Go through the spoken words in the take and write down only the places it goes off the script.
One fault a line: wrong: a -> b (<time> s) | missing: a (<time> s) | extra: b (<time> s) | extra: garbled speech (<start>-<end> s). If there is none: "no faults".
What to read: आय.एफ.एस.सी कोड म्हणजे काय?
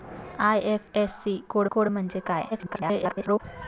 extra: कोड (1.7 s)
extra: garbled speech (2.5-3.4 s)